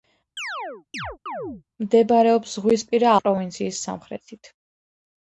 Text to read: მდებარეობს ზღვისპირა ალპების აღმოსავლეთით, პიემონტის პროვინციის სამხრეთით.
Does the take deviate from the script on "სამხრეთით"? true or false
false